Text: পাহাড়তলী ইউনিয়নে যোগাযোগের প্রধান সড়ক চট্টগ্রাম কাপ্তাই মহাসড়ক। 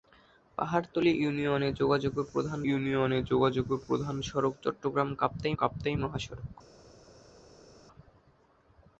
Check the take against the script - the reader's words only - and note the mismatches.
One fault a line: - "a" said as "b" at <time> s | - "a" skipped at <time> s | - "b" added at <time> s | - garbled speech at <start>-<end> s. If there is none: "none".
- "ইউনিয়নে যোগাযোগের প্রধান" added at 2.6 s
- "কাপ্তাই" added at 5.5 s